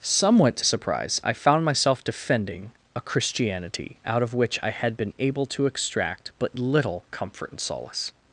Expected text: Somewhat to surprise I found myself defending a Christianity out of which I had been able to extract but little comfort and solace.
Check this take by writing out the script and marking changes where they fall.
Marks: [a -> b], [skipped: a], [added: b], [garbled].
Somewhat to surprise I found myself defending a Christianity out of which I had been able to extract but little comfort and solace.